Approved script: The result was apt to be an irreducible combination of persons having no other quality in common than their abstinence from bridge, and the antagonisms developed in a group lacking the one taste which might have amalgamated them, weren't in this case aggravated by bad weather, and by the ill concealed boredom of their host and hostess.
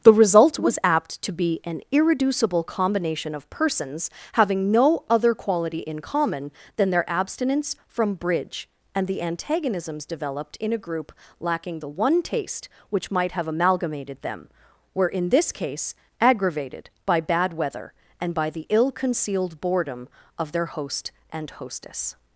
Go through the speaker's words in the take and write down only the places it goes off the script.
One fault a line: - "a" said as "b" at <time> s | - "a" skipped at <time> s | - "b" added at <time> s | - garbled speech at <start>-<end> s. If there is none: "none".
- "weren't" said as "were" at 14.9 s